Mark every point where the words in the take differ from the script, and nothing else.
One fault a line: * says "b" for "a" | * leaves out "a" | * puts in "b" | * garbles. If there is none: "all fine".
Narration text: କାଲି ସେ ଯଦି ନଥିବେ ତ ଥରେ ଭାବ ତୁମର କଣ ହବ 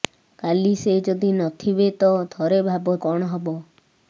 * leaves out "ତୁମର"